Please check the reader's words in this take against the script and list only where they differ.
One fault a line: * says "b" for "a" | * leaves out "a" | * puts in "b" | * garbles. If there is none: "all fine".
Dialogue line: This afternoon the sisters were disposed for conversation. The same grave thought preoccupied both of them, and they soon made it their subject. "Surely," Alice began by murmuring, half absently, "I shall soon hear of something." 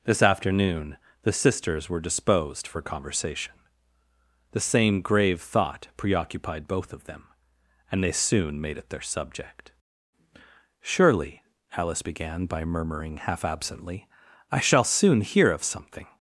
all fine